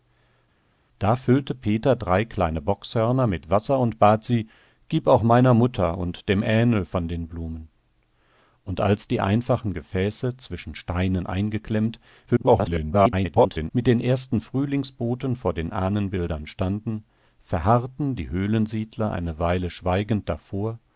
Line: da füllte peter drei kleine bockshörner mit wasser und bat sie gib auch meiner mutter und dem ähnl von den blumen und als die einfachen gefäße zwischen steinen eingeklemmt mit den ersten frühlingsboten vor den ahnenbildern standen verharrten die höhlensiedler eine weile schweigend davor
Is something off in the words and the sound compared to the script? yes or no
yes